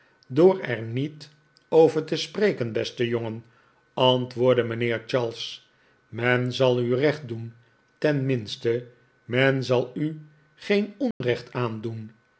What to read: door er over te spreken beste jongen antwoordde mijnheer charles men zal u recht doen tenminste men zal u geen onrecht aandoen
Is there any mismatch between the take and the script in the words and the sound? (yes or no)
yes